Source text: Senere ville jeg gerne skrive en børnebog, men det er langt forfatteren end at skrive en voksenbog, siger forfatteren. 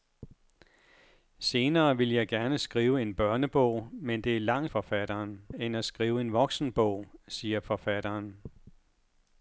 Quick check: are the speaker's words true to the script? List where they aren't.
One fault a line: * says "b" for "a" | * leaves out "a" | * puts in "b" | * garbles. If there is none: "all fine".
all fine